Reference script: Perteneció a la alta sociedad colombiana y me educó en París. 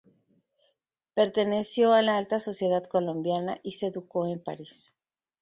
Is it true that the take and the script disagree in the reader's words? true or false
true